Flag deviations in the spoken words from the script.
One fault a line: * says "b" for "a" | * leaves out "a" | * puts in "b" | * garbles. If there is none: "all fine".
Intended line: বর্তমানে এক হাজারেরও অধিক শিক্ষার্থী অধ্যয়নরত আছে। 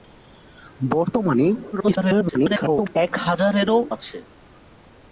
* garbles
* leaves out "অধিক শিক্ষার্থী অধ্যয়নরত"